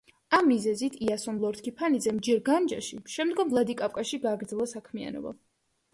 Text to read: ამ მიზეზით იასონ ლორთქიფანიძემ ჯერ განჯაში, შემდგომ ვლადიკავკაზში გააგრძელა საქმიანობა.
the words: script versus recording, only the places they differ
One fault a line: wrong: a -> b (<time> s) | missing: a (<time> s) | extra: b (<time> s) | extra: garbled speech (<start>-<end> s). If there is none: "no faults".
no faults